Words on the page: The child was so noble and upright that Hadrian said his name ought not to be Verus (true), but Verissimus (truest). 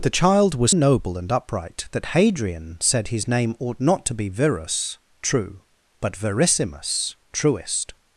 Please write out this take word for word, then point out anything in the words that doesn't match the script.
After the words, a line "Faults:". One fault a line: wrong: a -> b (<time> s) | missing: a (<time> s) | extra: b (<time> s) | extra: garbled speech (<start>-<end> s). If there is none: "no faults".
The child was noble and upright that Hadrian said his name ought not to be Verus (true), but Verissimus (truest).
Faults:
missing: so (0.7 s)